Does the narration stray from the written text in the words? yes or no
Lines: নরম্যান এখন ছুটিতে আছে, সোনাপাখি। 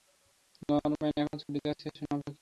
no